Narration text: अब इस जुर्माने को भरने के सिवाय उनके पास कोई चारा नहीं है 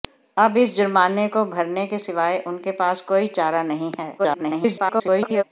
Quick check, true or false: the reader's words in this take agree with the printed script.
false